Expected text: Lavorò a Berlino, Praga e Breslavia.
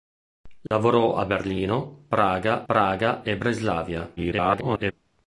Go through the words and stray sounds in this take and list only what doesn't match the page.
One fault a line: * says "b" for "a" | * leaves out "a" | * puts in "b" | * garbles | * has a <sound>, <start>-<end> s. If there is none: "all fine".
* has a dropout, 0.7-0.7 s
* puts in "Praga"
* garbles